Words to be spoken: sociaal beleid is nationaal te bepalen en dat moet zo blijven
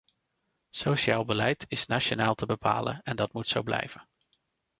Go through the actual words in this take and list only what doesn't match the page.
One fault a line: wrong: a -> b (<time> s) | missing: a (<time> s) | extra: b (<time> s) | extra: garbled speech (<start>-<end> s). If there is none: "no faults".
no faults